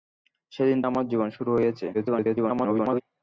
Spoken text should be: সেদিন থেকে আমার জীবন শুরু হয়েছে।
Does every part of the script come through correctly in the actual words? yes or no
no